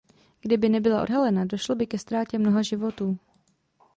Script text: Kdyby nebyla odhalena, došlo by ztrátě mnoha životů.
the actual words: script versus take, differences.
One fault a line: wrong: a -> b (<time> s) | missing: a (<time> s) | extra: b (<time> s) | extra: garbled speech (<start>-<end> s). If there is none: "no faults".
extra: ke (1.9 s)